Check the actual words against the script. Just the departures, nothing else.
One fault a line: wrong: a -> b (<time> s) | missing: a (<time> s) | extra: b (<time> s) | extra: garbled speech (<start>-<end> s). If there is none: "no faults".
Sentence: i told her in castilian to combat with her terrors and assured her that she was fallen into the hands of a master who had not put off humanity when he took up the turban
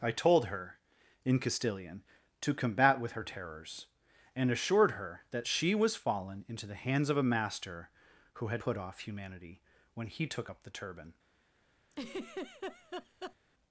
missing: not (8.6 s)